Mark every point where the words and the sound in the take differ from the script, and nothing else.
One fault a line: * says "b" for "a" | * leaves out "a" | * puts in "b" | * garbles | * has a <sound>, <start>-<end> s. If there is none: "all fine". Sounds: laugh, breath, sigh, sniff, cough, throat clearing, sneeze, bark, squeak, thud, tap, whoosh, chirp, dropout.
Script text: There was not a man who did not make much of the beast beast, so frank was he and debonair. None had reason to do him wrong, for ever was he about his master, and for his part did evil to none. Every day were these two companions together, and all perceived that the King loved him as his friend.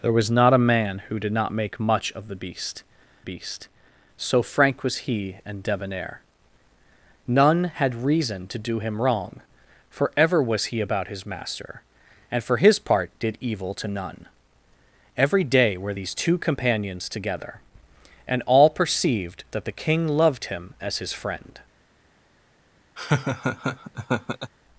* has a laugh, 23.0-24.5 s